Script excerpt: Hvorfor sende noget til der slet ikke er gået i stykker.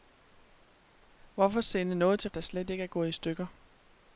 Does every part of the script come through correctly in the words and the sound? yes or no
yes